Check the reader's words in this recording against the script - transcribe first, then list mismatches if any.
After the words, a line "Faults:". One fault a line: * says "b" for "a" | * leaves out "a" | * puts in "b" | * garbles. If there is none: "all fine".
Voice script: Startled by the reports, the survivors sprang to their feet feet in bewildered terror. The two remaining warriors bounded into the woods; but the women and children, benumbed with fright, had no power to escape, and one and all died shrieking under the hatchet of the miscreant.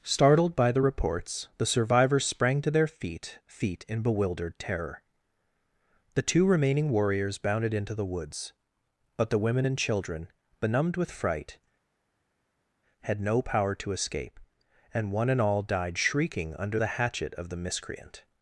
Startled by the reports, the survivors sprang to their feet feet in bewildered terror. The two remaining warriors bounded into the woods; but the women and children, benumbed with fright, had no power to escape, and one and all died shrieking under the hatchet of the miscreant.
Faults:
all fine